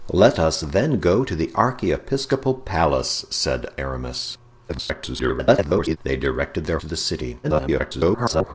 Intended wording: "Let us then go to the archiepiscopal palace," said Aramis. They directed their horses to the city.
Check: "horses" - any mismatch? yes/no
yes